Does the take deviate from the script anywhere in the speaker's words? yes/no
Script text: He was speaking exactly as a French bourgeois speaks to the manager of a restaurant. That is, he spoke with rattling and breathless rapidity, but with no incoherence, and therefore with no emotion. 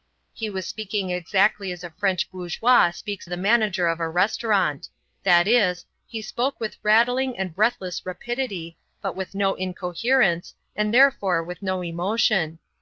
yes